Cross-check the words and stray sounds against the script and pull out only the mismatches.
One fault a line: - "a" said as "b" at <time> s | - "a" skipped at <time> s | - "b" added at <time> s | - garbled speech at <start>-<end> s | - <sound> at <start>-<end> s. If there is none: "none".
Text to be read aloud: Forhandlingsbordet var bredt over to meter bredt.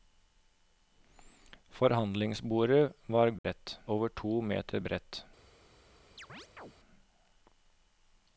- dropout at 3.4-3.4 s
- chirp at 6.2-6.7 s